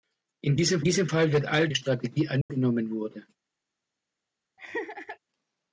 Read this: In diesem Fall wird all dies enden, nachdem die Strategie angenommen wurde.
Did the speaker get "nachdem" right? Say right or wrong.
wrong